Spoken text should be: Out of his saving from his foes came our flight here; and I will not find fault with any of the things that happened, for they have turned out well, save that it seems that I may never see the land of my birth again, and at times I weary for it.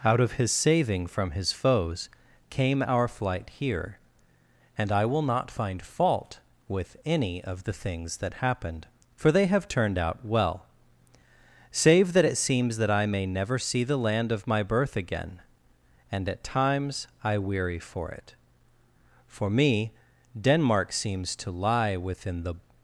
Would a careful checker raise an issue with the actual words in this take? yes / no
yes